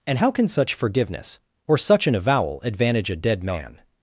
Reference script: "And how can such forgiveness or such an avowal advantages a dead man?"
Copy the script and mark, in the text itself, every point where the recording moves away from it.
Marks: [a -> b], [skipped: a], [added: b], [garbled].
"And how can such forgiveness or such an avowal [advantages -> advantage] a dead man?"